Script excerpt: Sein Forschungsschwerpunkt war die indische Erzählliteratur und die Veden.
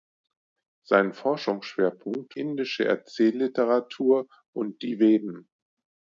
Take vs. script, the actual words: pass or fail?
fail